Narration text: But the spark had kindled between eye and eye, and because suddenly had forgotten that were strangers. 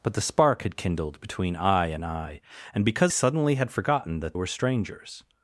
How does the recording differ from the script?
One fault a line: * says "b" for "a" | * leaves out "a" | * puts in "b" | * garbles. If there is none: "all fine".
all fine